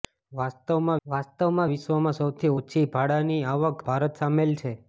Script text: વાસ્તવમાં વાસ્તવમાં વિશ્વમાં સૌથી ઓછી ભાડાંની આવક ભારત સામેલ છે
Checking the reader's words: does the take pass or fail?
pass